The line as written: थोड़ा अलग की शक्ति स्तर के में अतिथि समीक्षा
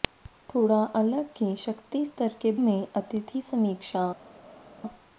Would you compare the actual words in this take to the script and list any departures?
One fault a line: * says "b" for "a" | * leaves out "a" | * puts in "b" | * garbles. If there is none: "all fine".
all fine